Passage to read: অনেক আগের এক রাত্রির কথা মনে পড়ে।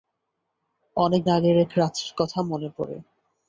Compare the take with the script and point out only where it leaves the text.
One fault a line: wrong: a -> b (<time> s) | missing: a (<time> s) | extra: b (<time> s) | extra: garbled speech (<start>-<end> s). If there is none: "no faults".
no faults